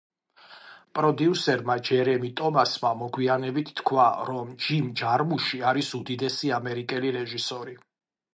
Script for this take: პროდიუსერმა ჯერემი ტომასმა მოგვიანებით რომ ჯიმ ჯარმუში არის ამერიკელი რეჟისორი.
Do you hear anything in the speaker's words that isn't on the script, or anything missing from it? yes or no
yes